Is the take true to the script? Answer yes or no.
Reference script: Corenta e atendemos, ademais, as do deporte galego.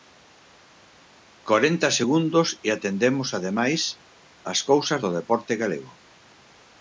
no